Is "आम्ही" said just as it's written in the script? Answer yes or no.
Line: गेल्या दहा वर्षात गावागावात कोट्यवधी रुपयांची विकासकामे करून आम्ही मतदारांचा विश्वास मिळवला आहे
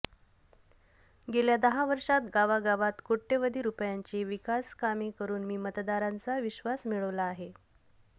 no